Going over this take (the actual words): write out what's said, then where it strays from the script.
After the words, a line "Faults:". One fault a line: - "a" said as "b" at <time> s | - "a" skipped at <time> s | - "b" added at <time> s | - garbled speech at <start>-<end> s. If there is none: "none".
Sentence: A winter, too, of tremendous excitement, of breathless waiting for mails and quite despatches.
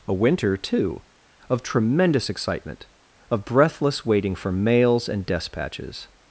A winter, too, of tremendous excitement, of breathless waiting for mails and despatches.
Faults:
- "quite" skipped at 5.2 s